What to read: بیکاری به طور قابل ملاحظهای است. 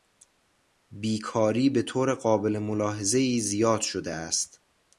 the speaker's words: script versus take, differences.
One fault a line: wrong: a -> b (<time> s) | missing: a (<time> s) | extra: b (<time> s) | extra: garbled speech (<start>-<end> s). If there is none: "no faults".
extra: زیاد شده (3.4 s)